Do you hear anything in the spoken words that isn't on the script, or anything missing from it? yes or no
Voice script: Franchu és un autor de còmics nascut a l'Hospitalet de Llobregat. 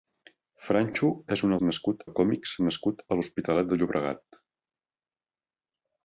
yes